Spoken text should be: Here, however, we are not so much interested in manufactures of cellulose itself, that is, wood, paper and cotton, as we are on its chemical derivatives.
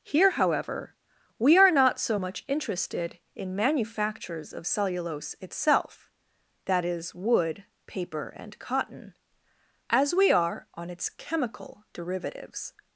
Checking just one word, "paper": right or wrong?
right